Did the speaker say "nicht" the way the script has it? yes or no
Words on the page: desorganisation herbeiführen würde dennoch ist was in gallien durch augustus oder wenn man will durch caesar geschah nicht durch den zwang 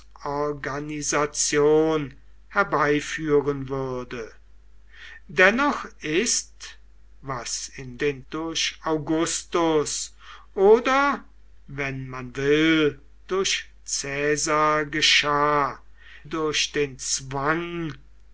no